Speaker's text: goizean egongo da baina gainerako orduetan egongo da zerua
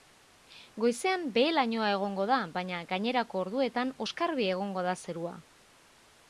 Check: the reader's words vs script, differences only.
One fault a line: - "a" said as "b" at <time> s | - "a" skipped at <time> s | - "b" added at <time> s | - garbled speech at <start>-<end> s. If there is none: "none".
- "behe lainoa" added at 1.4 s
- "oskarbi" added at 4.1 s